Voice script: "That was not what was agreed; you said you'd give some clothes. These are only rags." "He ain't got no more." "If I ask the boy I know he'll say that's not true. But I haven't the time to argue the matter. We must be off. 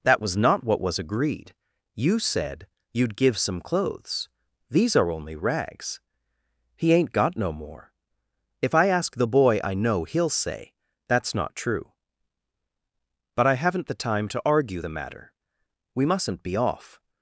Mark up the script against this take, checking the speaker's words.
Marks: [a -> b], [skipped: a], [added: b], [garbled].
"That was not what was agreed; you said you'd give some clothes. These are only rags." "He ain't got no more." "If I ask the boy I know he'll say that's not true. But I haven't the time to argue the matter. We [must -> mustn't] be off.